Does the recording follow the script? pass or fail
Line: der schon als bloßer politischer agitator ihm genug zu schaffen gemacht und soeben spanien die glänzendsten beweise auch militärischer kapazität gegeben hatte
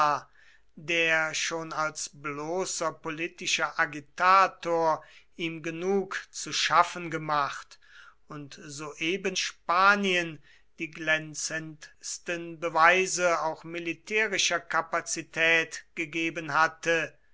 pass